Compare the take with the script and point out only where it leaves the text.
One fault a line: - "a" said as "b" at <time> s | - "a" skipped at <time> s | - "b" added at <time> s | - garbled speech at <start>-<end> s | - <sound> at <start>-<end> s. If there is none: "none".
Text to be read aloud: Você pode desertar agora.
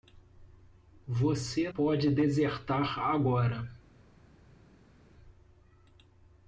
none